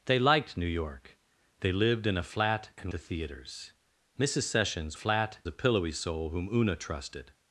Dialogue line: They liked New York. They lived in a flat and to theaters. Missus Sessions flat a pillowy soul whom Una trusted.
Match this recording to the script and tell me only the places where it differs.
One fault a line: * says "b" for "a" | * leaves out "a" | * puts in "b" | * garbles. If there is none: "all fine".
all fine